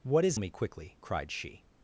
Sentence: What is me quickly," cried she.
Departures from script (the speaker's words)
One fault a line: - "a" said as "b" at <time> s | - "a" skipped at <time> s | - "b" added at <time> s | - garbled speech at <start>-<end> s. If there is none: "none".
none